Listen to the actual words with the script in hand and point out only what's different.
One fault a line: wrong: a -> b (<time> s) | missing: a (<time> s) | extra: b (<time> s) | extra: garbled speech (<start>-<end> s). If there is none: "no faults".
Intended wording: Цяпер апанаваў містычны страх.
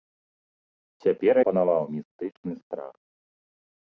no faults